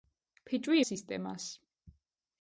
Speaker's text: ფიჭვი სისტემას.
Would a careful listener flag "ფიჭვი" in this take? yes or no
no